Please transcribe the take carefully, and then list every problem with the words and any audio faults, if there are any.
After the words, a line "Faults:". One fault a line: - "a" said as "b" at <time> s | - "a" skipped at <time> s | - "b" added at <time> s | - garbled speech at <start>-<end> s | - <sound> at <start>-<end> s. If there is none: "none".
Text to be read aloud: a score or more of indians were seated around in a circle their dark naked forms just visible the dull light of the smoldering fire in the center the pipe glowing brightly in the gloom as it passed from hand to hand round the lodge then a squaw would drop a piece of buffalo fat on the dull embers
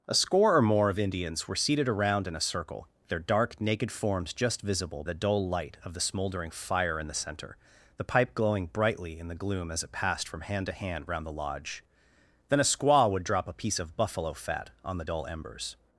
a score or more of indians were seated around in a circle their dark naked forms just visible the dull light of the smoldering fire in the center the pipe glowing brightly in the gloom as it passed from hand to hand round the lodge then a squaw would drop a piece of buffalo fat on the dull embers
Faults:
none